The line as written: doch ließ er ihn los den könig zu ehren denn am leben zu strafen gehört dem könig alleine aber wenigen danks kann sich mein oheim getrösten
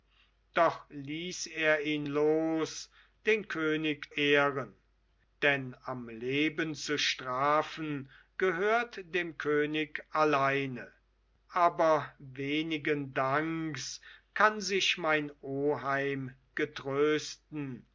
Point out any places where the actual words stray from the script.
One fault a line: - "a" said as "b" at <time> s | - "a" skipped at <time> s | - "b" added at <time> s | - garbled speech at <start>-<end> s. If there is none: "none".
- "zu" skipped at 4.1 s